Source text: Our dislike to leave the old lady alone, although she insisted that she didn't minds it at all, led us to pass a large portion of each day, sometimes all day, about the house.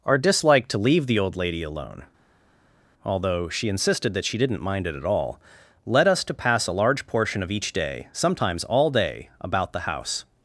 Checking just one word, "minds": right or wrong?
wrong